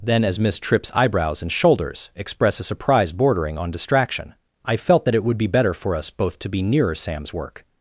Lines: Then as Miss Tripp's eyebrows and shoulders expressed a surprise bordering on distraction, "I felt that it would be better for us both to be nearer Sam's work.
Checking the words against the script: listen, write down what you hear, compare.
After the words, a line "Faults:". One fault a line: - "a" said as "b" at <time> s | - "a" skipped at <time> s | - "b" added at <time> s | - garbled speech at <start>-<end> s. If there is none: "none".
Then as Miss Tripp's eyebrows and shoulders express a surprise bordering on distraction, "I felt that it would be better for us both to be nearer Sam's work.
Faults:
- "expressed" said as "express" at 2.1 s